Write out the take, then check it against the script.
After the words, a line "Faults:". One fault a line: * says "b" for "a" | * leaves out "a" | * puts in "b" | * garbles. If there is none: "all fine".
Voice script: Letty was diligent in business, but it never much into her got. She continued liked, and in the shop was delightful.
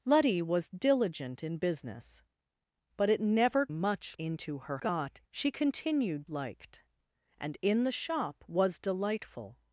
Letty was diligent in business, but it never much into her got. She continued liked, and in the shop was delightful.
Faults:
all fine